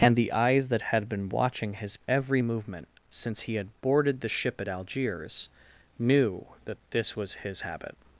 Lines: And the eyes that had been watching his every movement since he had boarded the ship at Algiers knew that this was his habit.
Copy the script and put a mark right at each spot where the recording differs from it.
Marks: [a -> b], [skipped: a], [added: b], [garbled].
And the eyes that had been watching his every movement since he had boarded the ship at Algiers knew that this was his habit.